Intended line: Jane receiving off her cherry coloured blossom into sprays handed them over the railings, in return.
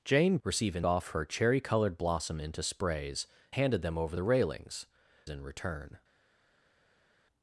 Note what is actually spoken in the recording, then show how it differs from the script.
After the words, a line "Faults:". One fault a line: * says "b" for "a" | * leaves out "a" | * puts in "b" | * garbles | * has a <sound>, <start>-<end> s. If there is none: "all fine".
Jane receiving off her cherry coloured blossom into sprays handed them over the railings, in return.
Faults:
all fine